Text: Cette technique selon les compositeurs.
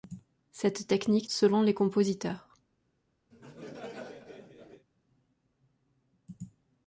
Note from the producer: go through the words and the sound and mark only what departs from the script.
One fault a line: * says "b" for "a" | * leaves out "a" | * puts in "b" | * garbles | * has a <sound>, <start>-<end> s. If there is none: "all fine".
* has a laugh, 3.3-4.9 s